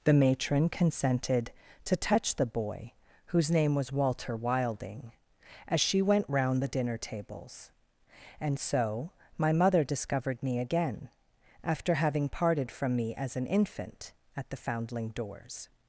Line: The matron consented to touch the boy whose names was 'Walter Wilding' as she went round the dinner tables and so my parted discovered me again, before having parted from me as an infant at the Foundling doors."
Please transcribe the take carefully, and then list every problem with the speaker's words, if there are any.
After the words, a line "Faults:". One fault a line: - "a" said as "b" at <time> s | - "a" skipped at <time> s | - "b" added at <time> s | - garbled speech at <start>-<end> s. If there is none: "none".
The matron consented to touch the boy whose name was 'Walter Wilding' as she went round the dinner tables and so my mother discovered me again, after having parted from me as an infant at the Foundling doors."
Faults:
- "names" said as "name" at 3.5 s
- "parted" said as "mother" at 9.5 s
- "before" said as "after" at 11.6 s